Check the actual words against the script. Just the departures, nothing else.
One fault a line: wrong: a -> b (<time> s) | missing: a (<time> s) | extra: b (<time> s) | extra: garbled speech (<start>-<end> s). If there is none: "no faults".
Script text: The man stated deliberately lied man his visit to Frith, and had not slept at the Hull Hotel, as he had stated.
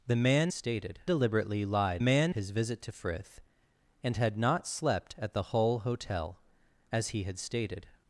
no faults